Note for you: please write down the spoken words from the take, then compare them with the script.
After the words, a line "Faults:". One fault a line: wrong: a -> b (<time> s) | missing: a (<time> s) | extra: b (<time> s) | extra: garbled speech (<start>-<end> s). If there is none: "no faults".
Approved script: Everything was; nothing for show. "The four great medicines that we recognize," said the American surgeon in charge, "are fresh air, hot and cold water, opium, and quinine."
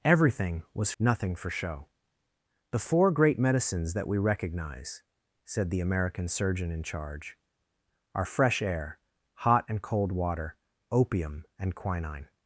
Everything was; nothing for show. "The four great medicines that we recognize," said the American surgeon in charge, "are fresh air, hot and cold water, opium, and quinine."
Faults:
no faults